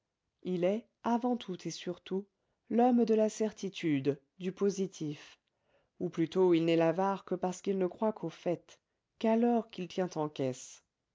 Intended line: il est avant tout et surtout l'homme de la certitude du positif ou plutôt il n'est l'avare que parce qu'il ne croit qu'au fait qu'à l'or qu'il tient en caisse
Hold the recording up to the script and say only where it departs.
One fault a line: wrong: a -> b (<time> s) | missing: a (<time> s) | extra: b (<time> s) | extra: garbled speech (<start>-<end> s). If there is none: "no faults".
no faults